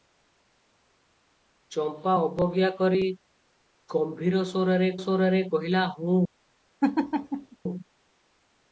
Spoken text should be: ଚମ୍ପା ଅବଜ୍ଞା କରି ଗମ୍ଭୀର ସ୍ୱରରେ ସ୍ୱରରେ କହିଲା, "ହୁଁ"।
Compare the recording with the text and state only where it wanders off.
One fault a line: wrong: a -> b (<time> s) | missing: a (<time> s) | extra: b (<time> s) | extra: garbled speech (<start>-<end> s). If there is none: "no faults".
no faults